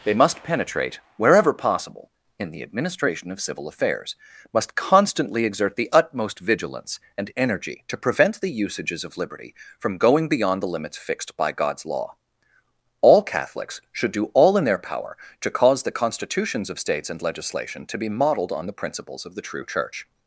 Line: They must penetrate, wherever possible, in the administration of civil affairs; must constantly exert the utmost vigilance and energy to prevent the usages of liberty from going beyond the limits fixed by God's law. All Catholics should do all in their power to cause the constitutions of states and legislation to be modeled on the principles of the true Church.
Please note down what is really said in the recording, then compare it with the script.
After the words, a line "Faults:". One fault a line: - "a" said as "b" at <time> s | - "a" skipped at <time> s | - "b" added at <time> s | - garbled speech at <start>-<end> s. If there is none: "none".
They must penetrate, wherever possible, in the administration of civil affairs; must constantly exert the utmost vigilance and energy to prevent the usages of liberty from going beyond the limits fixed by God's law. All Catholics should do all in their power to cause the constitutions of states and legislation to be modeled on the principles of the true Church.
Faults:
none